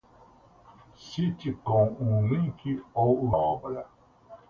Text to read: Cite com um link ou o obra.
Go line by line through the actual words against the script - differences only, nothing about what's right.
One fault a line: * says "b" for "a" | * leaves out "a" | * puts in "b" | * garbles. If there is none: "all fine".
all fine